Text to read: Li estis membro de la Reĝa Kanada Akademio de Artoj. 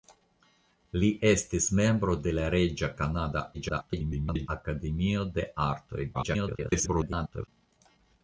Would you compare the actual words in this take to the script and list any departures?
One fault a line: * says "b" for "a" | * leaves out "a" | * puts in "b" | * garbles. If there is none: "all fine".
* garbles
* garbles